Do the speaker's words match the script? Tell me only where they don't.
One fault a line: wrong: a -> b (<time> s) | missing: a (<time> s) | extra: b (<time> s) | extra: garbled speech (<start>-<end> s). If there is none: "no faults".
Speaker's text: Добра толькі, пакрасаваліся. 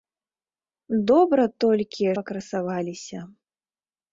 no faults